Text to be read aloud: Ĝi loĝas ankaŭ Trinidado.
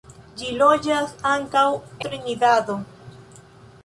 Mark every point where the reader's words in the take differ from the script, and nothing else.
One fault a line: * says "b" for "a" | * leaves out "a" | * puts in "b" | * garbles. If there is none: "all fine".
all fine